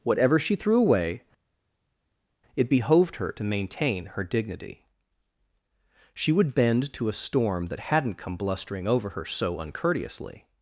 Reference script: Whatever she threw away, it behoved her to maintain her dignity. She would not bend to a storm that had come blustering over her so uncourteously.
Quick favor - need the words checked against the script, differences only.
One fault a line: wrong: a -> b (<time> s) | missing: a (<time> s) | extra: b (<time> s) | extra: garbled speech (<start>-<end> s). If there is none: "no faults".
missing: not (6.5 s)
wrong: had -> hadn't (7.8 s)